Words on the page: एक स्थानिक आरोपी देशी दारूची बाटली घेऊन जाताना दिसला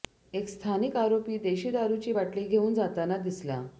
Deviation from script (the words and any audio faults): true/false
false